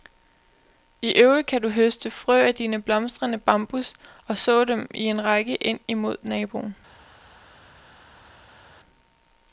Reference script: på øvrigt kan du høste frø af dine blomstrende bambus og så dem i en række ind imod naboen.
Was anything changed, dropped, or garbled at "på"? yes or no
yes